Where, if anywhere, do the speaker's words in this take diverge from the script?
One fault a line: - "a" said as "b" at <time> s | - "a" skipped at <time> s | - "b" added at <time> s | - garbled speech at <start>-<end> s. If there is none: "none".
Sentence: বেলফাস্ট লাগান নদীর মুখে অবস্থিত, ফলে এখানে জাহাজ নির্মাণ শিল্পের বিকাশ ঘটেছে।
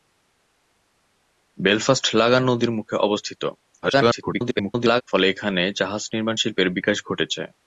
- garbled speech at 3.8-5.0 s